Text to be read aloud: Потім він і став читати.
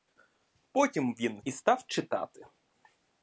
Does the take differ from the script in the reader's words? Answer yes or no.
no